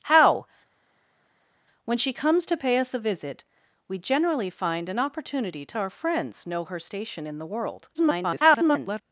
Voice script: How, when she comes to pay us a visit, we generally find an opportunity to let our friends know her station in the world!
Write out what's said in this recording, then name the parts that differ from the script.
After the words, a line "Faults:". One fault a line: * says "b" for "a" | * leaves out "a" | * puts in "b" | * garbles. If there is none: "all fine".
How, when she comes to pay us a visit, we generally find an opportunity to our friends know her station in the world! [garbled]
Faults:
* leaves out "let"
* garbles